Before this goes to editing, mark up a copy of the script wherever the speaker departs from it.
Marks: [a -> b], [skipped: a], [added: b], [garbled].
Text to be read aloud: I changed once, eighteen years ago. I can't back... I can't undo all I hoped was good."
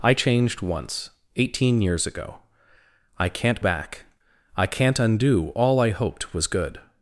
I changed once, eighteen years ago. I can't back... I can't undo all I hoped was good."